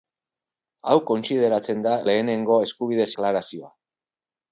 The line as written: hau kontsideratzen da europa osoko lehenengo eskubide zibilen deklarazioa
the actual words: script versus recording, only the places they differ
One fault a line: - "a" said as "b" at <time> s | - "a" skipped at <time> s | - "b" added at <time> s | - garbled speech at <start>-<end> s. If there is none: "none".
- "europa osoko" skipped at 1.9 s
- "zibilen" skipped at 3.1 s